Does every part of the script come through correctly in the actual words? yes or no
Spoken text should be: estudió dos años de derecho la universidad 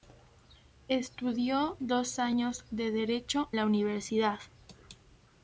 yes